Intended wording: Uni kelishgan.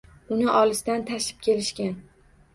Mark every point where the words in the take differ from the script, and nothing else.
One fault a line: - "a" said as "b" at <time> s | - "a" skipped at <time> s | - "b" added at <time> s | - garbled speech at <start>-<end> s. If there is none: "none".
- "olisdan tashib" added at 0.6 s